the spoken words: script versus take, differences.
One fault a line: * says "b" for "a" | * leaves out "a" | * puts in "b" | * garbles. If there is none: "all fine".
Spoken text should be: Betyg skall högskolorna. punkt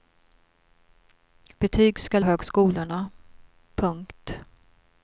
all fine